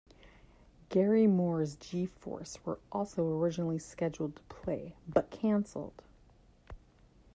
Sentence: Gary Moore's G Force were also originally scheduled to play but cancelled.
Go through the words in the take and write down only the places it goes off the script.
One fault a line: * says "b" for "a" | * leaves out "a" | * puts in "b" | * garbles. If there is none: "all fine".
all fine